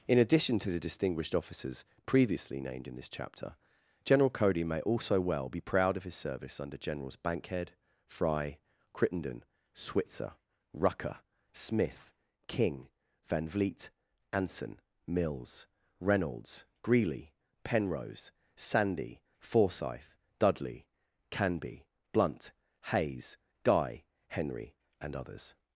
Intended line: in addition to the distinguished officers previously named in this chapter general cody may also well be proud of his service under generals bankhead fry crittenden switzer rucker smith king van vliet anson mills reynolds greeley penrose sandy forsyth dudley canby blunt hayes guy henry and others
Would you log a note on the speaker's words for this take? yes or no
no